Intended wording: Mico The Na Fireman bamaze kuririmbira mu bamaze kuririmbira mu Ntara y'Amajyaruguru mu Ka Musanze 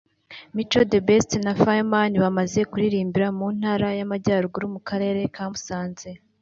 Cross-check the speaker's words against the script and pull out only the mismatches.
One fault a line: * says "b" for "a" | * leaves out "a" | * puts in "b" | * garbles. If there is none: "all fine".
* puts in "Best"
* leaves out "bamaze kuririmbira mu"
* puts in "Karere"